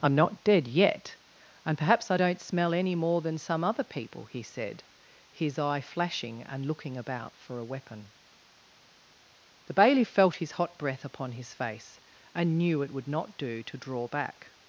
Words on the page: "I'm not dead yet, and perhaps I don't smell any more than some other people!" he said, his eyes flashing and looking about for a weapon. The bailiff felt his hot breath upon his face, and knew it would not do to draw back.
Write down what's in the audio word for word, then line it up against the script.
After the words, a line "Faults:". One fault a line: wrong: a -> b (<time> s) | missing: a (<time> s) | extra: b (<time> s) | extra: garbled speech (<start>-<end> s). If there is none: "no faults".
"I'm not dead yet, and perhaps I don't smell any more than some other people!" he said, his eye flashing and looking about for a weapon. The bailiff felt his hot breath upon his face, and knew it would not do to draw back.
Faults:
wrong: eyes -> eye (5.6 s)